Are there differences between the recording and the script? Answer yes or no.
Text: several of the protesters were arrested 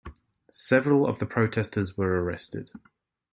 no